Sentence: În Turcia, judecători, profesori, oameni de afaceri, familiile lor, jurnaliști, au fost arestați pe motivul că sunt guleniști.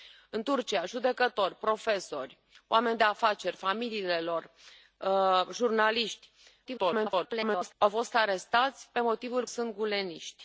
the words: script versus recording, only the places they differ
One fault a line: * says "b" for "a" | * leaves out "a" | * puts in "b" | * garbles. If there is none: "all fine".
* garbles
* leaves out "că"